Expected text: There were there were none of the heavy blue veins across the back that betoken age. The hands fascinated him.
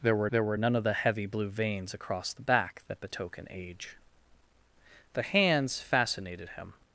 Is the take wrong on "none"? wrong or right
right